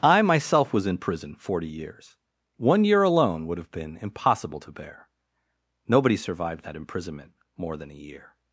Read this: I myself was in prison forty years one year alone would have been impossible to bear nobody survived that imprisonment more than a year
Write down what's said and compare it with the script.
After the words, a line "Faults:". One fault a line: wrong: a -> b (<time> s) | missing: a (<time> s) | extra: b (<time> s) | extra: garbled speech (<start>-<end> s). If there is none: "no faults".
I myself was in prison forty years one year alone would have been impossible to bear nobody survived that imprisonment more than a year
Faults:
no faults